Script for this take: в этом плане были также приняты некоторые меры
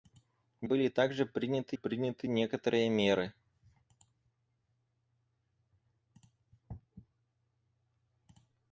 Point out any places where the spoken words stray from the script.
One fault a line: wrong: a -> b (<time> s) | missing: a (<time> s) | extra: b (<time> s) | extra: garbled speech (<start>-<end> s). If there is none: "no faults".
missing: этом плане (0.7 s)
extra: приняты (1.7 s)